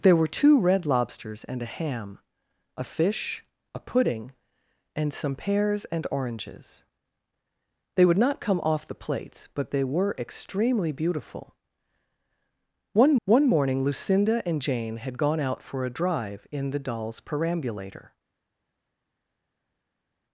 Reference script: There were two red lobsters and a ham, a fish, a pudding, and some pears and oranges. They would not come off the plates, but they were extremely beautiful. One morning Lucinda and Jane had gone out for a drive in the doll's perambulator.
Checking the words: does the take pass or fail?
fail